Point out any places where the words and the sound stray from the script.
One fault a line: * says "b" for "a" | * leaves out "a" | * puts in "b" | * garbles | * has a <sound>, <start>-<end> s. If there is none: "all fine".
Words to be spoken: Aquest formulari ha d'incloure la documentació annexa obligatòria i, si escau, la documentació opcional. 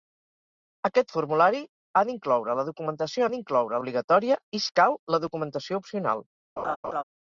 * says "d'incloure" for "annexa"
* leaves out "si"
* has a laugh, 6.6-7.0 s